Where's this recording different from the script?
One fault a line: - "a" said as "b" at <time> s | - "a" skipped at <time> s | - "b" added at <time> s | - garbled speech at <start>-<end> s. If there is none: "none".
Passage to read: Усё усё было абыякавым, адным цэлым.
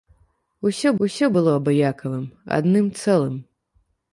none